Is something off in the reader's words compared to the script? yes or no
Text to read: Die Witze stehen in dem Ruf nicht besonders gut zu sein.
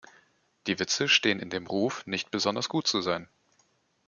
no